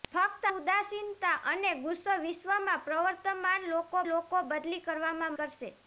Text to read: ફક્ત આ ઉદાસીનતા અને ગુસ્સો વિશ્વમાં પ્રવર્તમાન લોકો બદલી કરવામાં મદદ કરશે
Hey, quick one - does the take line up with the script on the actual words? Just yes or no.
no